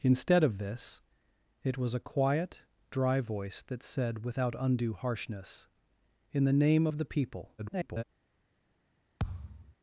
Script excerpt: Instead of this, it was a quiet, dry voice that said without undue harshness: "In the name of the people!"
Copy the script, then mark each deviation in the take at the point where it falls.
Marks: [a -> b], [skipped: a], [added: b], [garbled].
Instead of this, it was a quiet, dry voice that said without undue harshness: "In the name of the people!" [garbled]